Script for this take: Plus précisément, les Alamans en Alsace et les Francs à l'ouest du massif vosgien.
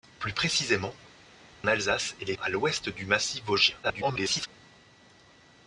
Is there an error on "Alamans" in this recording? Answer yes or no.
yes